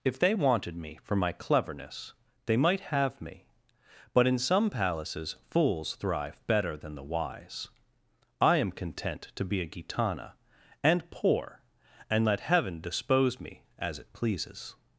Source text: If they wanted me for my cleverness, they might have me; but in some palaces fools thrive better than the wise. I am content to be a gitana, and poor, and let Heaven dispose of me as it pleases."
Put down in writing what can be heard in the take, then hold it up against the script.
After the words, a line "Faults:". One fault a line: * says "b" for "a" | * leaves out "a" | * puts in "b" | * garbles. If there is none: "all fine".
If they wanted me for my cleverness, they might have me; but in some palaces fools thrive better than the wise. I am content to be a gitana, and poor, and let Heaven dispose me as it pleases."
Faults:
* leaves out "of"